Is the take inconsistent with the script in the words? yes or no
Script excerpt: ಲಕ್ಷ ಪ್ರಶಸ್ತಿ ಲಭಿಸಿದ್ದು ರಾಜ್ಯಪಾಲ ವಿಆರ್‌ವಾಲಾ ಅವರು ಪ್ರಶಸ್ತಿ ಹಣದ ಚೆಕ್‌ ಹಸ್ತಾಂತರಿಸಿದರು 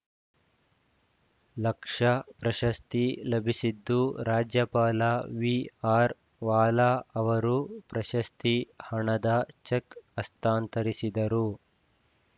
no